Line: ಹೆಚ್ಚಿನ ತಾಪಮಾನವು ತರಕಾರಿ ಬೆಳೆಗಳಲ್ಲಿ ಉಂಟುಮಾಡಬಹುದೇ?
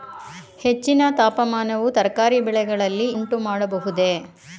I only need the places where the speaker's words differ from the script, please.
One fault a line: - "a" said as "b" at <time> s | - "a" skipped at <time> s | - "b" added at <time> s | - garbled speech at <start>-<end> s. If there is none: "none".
none